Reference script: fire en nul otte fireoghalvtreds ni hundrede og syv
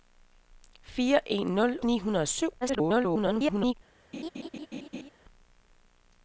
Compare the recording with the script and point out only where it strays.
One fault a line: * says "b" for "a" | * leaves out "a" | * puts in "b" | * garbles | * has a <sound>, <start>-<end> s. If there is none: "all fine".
* leaves out "otte fireoghalvtreds"
* garbles
* has a laugh, 4.1-5.1 s